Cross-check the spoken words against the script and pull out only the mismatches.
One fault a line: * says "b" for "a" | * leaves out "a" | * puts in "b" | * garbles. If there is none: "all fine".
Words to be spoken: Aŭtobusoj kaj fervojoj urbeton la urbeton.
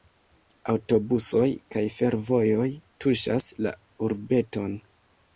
* says "tuŝas" for "urbeton"